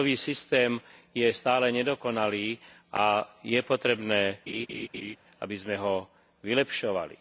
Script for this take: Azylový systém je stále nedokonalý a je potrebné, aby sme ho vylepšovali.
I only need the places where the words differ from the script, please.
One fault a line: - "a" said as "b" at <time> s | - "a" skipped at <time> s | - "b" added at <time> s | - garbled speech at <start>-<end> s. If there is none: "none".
none